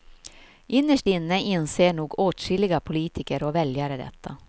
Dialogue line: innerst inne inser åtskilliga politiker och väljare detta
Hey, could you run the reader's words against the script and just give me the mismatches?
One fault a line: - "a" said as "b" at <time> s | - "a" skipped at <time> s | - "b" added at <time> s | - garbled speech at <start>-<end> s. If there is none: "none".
- "nog" added at 1.9 s